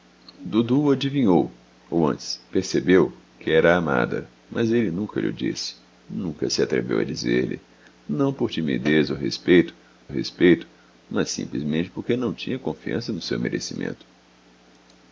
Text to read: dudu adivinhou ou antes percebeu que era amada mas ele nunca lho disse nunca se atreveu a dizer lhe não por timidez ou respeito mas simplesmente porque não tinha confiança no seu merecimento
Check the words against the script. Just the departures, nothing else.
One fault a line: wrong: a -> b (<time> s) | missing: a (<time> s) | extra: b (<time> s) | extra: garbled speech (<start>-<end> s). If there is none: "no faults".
extra: respeito (10.1 s)